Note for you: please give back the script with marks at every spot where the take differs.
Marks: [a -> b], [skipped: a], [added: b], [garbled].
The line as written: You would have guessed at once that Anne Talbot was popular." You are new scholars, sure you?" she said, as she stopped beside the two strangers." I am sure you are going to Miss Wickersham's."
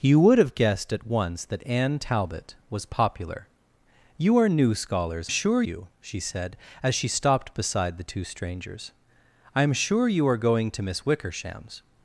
You would have guessed at once that Anne Talbot was popular." You are new scholars, sure you?" she said, as she stopped beside the two strangers." I am sure you are going to Miss Wickersham's."